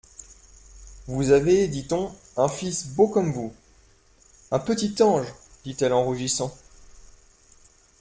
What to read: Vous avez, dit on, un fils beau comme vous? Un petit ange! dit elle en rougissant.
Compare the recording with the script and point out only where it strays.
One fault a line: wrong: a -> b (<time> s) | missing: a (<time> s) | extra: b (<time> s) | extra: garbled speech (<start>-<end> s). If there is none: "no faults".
no faults